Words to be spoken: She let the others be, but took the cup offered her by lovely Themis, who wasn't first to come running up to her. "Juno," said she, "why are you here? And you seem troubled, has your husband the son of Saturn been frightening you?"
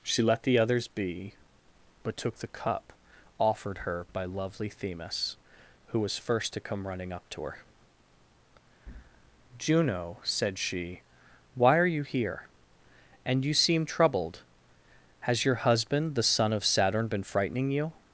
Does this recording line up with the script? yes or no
no